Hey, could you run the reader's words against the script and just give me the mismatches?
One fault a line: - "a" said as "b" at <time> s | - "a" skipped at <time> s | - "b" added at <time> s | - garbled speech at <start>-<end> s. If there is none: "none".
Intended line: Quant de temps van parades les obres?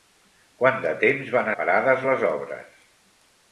none